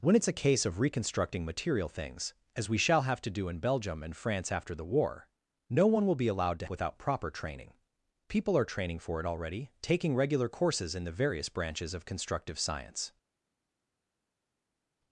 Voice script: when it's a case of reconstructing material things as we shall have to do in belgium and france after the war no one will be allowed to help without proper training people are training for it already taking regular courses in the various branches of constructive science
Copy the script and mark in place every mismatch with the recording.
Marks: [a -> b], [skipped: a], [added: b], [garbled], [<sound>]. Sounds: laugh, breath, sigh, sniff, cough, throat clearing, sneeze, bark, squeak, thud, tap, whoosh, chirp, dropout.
when it's a case of reconstructing material things as we shall have to do in belgium and france after the war no one will be allowed to [skipped: help] without proper training people are training for it already taking regular courses in the various branches of constructive science